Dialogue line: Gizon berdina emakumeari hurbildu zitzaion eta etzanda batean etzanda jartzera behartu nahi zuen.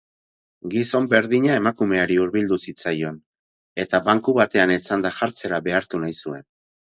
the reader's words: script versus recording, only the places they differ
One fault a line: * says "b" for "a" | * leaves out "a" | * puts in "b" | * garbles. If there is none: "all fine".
* says "banku" for "etzanda"